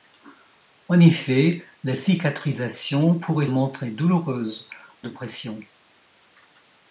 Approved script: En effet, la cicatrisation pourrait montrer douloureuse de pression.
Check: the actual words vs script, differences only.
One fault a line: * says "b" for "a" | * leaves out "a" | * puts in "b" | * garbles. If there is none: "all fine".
all fine